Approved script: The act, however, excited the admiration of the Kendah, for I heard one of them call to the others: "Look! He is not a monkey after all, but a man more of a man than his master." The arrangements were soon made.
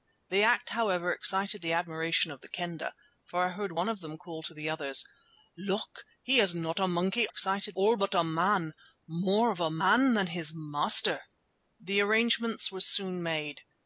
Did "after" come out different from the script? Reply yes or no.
yes